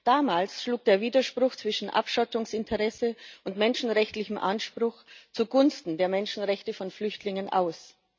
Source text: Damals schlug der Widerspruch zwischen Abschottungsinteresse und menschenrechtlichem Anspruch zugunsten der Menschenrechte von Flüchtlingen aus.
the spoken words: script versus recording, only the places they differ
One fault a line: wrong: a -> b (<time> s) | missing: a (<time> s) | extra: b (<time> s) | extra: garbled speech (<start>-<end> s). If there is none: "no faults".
no faults